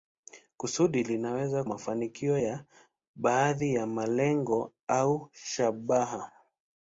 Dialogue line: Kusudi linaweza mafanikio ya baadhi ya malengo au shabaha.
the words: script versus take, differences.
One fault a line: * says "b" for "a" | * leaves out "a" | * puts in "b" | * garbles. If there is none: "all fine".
all fine